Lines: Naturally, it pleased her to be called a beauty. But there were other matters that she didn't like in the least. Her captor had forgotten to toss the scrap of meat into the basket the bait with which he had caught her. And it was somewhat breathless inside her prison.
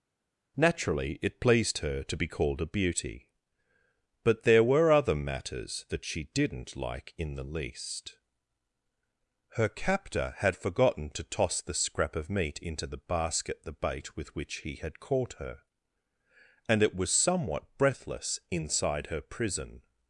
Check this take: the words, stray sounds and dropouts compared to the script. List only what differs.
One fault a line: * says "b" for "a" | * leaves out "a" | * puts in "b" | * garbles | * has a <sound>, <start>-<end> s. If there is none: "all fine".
all fine